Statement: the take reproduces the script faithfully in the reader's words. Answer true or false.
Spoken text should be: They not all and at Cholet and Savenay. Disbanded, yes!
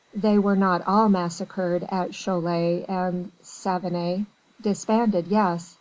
false